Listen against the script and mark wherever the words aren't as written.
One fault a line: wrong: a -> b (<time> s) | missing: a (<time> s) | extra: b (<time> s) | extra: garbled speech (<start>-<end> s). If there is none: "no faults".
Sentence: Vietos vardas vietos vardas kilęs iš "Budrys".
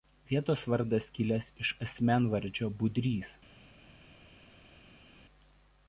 missing: vietos vardas (1.1 s)
extra: asmenvardžio (1.9 s)